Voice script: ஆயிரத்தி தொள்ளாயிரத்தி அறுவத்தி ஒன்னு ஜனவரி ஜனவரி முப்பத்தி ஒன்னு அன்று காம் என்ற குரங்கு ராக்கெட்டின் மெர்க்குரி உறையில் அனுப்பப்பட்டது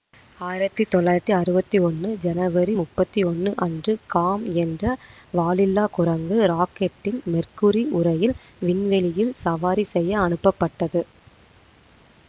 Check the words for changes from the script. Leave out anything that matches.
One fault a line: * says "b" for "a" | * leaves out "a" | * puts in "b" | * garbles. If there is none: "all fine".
* leaves out "ஜனவரி"
* puts in "வாலில்லா"
* puts in "விண்வெளியில் சவாரி செய்ய"